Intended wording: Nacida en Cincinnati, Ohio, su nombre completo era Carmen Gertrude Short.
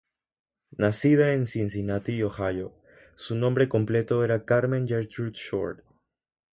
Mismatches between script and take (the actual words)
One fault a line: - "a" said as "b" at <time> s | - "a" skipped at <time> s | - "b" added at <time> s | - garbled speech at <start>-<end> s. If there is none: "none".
none